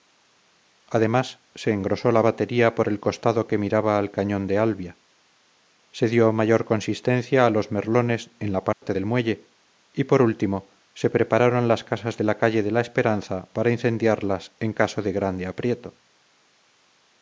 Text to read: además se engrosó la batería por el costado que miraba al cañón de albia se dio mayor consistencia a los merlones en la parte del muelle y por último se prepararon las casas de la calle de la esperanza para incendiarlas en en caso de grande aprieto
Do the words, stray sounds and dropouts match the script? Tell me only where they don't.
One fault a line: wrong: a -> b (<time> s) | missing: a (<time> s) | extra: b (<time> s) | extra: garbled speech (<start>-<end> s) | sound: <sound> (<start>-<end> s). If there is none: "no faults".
sound: dropout (8.7-8.8 s)
missing: en (14.7 s)